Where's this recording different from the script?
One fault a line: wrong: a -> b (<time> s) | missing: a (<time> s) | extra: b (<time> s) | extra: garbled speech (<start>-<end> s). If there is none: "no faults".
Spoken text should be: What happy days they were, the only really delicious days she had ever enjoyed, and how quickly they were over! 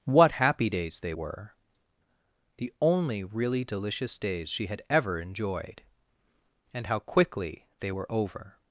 no faults